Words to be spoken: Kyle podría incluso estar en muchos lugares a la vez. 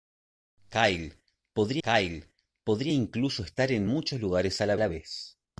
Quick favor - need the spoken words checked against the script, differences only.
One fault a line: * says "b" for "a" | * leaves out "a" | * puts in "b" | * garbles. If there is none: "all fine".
* puts in "kyle podría"
* puts in "la"